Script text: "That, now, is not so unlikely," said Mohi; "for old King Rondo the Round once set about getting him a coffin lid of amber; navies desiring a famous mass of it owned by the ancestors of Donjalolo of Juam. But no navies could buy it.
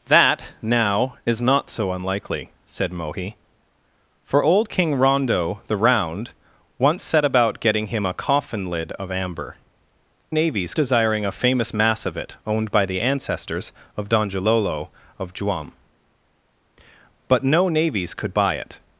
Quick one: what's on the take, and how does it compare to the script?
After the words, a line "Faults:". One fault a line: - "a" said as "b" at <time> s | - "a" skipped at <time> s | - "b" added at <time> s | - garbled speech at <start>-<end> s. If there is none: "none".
"That, now, is not so unlikely," said Mohi; "for old King Rondo the Round once set about getting him a coffin lid of amber; navies desiring a famous mass of it owned by the ancestors of Donjalolo of Juam. But no navies could buy it.
Faults:
none